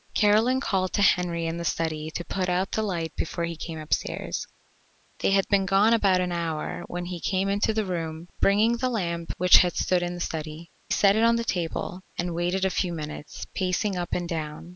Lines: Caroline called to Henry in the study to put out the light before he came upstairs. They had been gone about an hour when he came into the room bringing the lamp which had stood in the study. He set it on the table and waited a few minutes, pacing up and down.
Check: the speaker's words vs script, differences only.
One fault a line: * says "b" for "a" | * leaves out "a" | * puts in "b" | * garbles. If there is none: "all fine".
* leaves out "He"